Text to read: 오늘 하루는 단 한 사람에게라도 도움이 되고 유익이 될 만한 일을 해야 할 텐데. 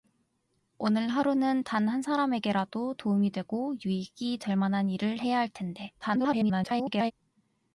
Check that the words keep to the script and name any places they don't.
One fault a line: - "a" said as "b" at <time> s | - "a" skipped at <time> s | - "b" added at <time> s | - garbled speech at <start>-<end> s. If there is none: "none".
- garbled speech at 6.0-7.1 s